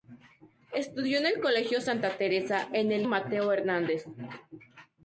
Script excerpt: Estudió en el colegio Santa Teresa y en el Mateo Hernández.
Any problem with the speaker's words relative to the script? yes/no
no